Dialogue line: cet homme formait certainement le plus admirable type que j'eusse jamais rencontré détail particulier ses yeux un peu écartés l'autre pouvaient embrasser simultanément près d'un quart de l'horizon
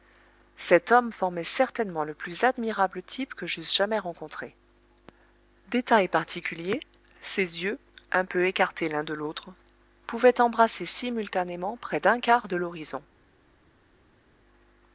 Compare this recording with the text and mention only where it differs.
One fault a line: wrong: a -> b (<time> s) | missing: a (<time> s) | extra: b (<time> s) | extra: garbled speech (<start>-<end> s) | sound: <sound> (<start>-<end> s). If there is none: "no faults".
extra: l'un de (8.9 s)